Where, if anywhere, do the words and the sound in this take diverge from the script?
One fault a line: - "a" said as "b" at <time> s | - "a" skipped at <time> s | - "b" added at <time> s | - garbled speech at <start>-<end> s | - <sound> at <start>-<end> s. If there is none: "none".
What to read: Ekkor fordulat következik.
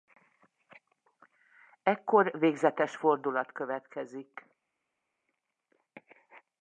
- "végzetes" added at 2.3 s